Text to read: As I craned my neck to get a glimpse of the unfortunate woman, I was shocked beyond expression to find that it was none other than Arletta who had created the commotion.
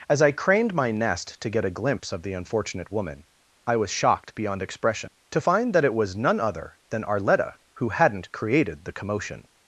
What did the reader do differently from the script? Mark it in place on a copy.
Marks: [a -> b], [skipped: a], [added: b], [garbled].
As I craned my [neck -> nest] to get a glimpse of the unfortunate woman, I was shocked beyond expression to find that it was none other than Arletta who [had -> hadn't] created the commotion.